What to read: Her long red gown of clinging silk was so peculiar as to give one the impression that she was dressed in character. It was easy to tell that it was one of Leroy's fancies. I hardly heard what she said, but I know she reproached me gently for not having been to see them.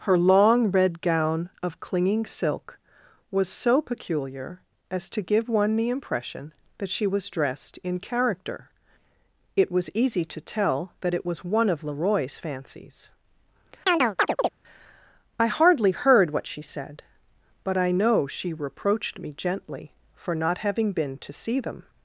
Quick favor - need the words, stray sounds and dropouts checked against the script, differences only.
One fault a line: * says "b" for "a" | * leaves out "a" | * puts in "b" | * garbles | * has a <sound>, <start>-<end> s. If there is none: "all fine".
* has a chirp, 13.9-14.5 s